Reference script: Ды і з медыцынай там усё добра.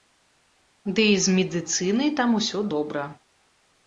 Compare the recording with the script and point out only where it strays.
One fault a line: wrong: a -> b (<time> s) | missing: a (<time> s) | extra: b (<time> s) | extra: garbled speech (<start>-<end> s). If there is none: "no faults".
no faults